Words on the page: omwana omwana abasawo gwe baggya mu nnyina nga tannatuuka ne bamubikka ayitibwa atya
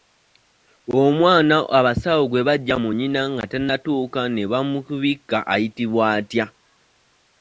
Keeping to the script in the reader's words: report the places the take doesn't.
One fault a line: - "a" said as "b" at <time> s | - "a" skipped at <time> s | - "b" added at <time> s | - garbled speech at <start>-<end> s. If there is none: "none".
- "omwana" skipped at 1.6 s